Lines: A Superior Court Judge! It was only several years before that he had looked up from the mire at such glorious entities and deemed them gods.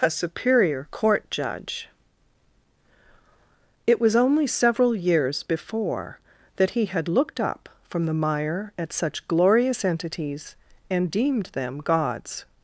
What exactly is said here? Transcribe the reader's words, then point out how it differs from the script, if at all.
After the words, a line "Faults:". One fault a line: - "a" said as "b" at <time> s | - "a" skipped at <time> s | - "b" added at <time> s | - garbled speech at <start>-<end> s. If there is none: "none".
A Superior Court Judge! It was only several years before that he had looked up from the mire at such glorious entities and deemed them gods.
Faults:
none